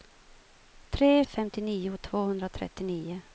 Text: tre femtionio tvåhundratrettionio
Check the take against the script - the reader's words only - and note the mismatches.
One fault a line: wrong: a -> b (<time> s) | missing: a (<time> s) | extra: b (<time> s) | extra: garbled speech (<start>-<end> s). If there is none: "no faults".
no faults